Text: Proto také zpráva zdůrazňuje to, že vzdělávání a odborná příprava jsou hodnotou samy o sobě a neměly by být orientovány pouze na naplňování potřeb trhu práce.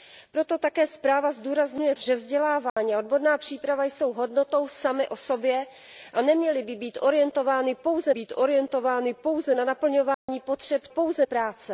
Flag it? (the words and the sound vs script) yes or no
yes